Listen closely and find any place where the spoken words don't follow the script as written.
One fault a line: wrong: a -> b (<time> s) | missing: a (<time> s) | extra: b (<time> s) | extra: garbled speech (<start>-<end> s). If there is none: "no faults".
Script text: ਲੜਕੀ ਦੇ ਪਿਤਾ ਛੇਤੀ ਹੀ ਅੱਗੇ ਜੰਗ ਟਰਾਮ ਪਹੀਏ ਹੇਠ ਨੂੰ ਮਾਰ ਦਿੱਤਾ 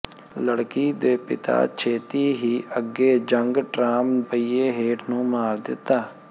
no faults